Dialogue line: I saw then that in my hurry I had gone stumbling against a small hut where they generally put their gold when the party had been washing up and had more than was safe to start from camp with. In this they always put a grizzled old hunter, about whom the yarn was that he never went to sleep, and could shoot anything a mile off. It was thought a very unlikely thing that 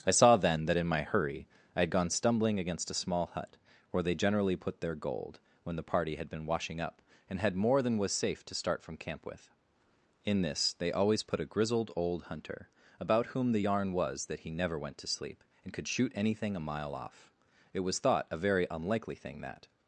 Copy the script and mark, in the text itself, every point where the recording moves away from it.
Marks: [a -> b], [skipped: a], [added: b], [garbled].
I saw then that in my hurry I had gone stumbling against a small hut where they generally put their gold when the party had been washing up and had more than was safe to start from camp with. In this they always put a grizzled old hunter, about whom the yarn was that he never went to sleep, and could shoot anything a mile off. It was thought a very unlikely thing that